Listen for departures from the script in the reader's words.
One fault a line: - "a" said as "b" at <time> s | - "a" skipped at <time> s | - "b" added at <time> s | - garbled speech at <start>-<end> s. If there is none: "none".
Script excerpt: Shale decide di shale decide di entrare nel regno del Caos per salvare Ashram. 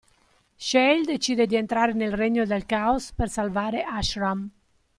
- "shale decide di" skipped at 1.6 s